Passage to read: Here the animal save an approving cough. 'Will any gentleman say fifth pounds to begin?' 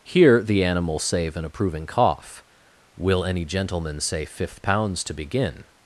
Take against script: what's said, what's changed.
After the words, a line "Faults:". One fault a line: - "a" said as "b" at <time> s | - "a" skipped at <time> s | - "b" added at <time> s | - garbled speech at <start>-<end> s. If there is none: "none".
Here the animal save an approving cough. 'Will any gentleman say fifth pounds to begin?'
Faults:
none